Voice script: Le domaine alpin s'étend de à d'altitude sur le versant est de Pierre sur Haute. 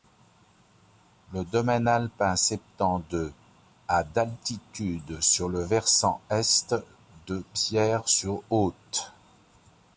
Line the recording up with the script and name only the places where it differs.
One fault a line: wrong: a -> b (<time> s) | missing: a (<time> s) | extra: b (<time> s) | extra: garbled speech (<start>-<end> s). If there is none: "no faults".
no faults